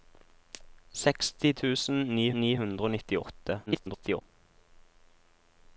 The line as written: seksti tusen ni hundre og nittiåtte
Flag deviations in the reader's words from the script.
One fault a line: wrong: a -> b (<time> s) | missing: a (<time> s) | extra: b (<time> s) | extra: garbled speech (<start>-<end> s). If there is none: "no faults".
extra: ni (2.4 s)
extra: garbled speech (3.7-4.2 s)